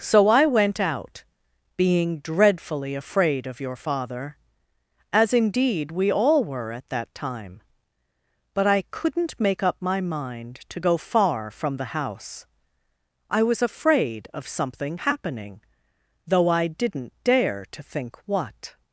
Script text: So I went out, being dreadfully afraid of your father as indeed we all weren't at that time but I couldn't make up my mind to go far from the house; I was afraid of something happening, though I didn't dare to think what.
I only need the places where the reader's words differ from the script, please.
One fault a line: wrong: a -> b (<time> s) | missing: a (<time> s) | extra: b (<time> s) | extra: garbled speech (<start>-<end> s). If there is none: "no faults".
wrong: weren't -> were (6.4 s)